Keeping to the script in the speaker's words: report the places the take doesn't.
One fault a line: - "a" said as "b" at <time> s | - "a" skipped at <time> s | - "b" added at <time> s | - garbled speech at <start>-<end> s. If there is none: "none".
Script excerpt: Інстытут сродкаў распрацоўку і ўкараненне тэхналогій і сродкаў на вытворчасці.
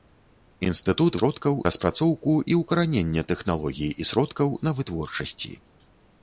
none